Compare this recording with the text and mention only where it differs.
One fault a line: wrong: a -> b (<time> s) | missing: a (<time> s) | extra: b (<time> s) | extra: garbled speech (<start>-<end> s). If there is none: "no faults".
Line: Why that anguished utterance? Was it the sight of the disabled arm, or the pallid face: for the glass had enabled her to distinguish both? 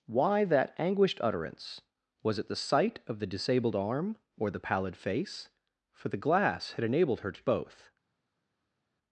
missing: distinguish (7.4 s)